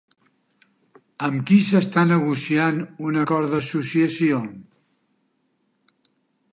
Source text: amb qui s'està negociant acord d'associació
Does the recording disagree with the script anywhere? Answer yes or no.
yes